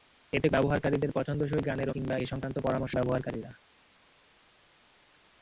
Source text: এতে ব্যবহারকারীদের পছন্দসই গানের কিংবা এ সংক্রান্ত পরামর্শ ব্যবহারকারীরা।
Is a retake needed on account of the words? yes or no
no